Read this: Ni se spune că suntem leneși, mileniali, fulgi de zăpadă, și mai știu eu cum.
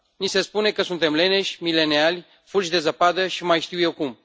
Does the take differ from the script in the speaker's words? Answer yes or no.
no